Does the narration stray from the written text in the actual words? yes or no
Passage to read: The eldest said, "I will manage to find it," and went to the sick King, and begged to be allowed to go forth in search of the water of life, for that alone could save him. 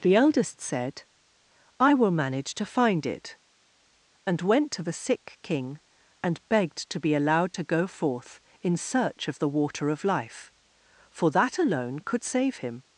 no